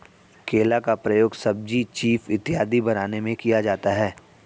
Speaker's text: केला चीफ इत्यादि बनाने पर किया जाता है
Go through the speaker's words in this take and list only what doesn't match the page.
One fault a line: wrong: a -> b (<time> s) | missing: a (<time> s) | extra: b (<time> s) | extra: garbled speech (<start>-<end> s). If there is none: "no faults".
extra: का प्रयोग सब्जी (0.8 s)
wrong: पर -> में (3.2 s)